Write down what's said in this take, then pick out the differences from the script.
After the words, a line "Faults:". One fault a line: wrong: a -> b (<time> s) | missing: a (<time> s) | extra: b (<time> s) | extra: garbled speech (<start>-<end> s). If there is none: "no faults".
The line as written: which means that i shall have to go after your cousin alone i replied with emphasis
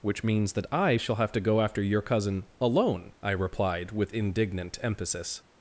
which means that i shall have to go after your cousin alone i replied with indignant emphasis
Faults:
extra: indignant (4.1 s)